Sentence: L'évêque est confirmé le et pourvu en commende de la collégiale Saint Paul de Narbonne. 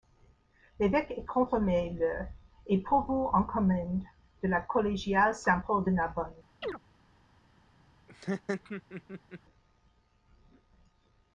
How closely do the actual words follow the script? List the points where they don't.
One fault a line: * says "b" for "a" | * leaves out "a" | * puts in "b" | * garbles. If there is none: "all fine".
all fine